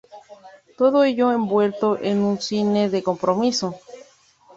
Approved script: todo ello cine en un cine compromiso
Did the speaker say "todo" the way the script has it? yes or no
yes